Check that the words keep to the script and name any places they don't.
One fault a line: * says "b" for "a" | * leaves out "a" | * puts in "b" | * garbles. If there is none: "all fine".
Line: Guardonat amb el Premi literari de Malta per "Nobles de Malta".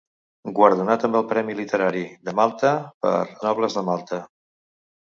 all fine